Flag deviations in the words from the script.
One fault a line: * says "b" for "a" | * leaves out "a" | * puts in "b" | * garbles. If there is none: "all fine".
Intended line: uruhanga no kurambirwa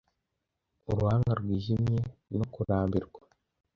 * puts in "rwijimye"